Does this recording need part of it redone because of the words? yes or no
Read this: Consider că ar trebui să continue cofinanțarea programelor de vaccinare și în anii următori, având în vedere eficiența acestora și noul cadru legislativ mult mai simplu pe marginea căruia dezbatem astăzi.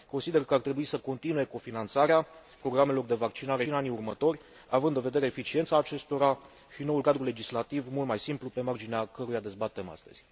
yes